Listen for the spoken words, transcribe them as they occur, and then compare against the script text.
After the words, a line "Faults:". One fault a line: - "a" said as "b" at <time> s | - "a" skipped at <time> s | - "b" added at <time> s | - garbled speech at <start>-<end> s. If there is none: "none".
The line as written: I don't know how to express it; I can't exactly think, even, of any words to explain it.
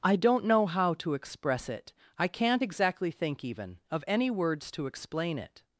I don't know how to express it; I can't exactly think, even, of any words to explain it.
Faults:
none